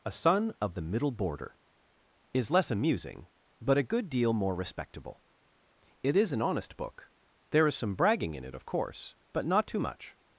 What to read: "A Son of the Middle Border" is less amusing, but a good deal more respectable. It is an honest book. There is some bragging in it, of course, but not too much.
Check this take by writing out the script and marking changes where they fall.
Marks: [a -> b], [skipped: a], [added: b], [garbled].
"A Son of the Middle Border" is less amusing, but a good deal more respectable. It is an honest book. There is some bragging in it, of course, but not too much.